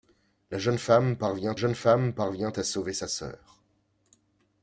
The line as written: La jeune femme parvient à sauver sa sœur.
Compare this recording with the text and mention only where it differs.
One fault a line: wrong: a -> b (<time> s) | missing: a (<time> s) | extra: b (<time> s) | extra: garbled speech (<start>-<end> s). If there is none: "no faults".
extra: jeune femme parvient (1.5 s)